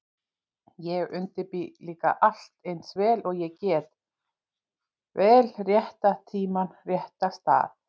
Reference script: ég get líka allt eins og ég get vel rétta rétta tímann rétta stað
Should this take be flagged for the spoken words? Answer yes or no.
yes